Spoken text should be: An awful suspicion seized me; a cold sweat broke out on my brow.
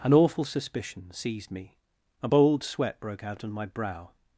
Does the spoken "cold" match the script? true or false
false